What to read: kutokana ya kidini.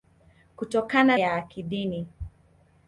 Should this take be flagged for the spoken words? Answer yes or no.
no